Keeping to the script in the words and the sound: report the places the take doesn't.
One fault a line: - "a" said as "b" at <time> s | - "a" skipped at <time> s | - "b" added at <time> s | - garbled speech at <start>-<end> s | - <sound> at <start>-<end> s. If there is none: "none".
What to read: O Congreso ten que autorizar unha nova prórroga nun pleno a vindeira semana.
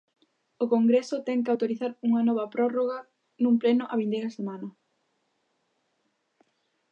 none